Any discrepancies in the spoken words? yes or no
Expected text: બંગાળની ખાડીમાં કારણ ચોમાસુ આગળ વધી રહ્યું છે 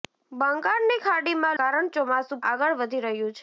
no